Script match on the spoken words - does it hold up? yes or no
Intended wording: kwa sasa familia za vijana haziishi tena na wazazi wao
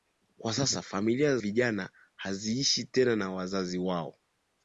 no